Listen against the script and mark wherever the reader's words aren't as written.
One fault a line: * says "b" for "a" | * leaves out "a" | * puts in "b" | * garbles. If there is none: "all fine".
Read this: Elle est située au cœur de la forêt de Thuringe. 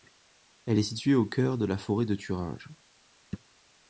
all fine